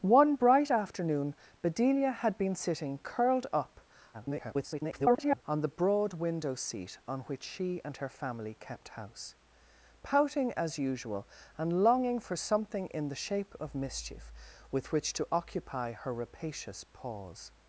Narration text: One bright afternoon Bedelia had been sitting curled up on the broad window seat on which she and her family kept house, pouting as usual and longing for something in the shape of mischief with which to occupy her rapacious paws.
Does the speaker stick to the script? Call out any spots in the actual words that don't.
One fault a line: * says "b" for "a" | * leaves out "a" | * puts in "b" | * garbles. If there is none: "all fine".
* garbles